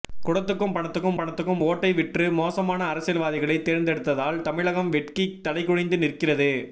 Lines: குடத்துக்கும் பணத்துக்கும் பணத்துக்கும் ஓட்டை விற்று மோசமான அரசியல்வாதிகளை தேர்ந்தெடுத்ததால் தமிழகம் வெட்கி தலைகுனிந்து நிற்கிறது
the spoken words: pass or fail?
pass